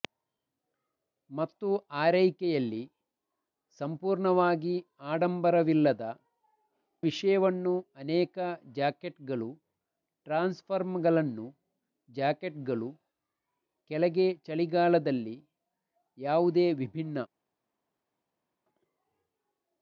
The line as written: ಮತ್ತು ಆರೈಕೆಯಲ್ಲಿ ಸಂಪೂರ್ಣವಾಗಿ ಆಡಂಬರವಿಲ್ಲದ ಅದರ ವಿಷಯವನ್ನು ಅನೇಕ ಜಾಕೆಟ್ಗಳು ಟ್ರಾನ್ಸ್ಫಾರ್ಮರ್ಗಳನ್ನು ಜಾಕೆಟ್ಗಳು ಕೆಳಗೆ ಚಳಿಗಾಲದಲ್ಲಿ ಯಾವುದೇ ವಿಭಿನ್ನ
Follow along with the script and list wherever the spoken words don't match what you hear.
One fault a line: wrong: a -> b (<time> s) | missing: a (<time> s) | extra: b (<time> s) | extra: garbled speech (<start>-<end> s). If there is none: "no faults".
missing: ಅದರ (6.0 s)